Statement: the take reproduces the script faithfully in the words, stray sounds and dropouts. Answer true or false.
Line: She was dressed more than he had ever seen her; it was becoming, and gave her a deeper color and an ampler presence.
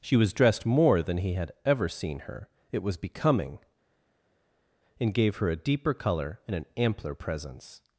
true